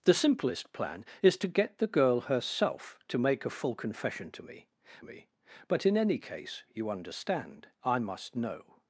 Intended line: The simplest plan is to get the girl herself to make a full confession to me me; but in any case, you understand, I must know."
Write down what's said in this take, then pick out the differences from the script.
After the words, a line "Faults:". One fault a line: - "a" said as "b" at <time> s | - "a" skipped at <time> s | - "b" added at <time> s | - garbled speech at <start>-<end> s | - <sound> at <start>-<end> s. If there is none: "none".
The simplest plan is to get the girl herself to make a full confession to me me; but in any case, you understand, I must know."
Faults:
none